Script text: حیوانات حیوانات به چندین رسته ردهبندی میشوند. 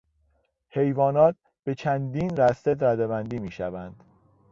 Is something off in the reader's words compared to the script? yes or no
yes